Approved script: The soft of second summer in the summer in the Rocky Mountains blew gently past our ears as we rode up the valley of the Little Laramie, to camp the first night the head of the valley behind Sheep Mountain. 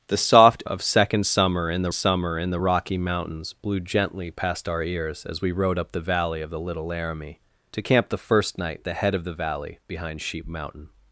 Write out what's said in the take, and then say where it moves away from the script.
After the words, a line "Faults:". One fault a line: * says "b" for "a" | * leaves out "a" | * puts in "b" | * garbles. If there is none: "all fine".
The soft of second summer in the summer in the Rocky Mountains blew gently past our ears as we rode up the valley of the Little Laramie, to camp the first night the head of the valley behind Sheep Mountain.
Faults:
all fine